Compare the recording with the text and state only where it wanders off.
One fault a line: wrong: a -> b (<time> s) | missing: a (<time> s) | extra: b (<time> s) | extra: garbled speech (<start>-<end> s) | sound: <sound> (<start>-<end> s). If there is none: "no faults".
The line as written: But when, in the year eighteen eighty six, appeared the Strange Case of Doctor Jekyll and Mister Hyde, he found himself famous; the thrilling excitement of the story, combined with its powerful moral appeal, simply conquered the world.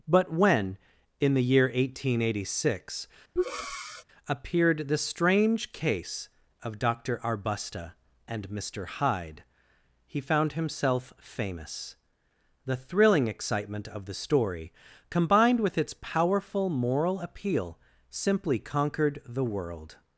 sound: breath (3.4-4.0 s)
wrong: Jekyll -> Arbusta (7.2 s)